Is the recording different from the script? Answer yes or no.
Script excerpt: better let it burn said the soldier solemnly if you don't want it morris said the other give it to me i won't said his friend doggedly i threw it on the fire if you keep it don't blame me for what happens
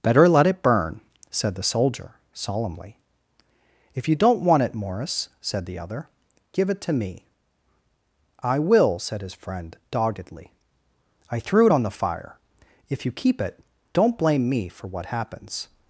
yes